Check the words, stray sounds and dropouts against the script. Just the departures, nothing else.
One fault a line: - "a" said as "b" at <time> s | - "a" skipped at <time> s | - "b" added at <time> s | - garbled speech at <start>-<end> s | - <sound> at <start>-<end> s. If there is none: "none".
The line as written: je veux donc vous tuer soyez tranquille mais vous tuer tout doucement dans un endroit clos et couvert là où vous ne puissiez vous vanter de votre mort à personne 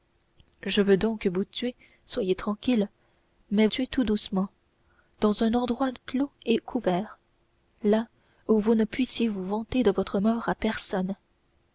- "vous" skipped at 3.7 s